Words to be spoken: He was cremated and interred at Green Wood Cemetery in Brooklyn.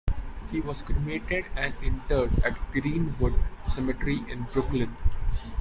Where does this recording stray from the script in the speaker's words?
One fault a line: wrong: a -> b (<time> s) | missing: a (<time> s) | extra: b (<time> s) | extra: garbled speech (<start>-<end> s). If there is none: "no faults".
no faults